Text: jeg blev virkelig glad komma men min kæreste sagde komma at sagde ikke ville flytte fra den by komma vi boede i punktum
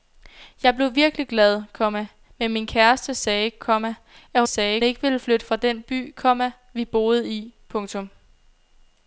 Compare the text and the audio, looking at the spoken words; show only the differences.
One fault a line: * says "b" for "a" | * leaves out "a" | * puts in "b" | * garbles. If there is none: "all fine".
all fine